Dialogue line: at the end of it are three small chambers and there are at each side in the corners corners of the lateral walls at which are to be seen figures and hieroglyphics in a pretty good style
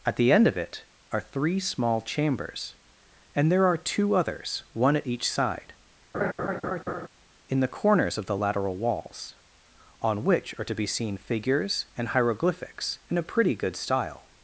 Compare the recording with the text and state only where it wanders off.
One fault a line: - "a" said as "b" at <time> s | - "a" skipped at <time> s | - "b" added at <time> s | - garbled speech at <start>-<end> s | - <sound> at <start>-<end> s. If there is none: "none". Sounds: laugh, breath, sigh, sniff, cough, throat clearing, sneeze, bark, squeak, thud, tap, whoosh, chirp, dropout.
- "two others one" added at 3.8 s
- laugh at 6.1-7.1 s
- "corners" skipped at 8.2 s
- "at" said as "on" at 10.0 s